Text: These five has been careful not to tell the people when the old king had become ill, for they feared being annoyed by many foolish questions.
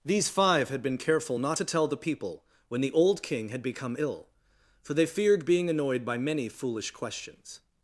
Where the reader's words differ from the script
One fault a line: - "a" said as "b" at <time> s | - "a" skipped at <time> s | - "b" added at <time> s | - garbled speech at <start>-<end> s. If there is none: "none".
- "has" said as "had" at 0.7 s